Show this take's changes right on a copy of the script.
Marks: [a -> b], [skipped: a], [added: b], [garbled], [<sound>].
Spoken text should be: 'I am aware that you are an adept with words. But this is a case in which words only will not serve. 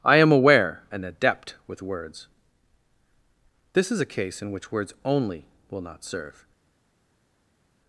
'I am aware [skipped: that you are] an adept with words. [skipped: But] this is a case in which words only will not serve.